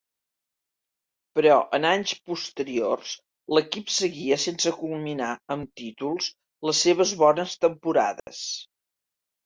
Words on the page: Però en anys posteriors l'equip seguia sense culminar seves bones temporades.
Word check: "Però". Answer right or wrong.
right